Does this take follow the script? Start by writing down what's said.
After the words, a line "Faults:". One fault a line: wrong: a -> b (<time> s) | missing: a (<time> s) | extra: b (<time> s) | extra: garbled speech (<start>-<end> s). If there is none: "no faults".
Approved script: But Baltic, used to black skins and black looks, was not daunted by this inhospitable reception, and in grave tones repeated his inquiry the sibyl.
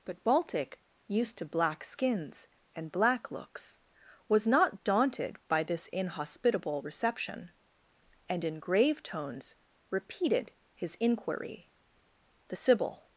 But Baltic, used to black skins and black looks, was not daunted by this inhospitable reception, and in grave tones repeated his inquiry the sibyl.
Faults:
no faults